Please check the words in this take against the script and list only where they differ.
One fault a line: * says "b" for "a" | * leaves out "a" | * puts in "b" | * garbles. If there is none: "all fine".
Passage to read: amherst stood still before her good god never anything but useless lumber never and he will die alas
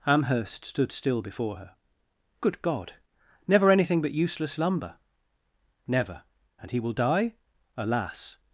all fine